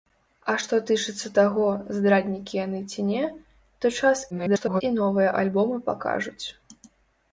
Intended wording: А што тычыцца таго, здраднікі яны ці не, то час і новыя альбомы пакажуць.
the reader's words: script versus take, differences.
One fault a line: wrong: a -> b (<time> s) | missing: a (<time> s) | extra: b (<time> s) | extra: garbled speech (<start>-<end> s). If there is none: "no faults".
extra: garbled speech (4.3-4.8 s)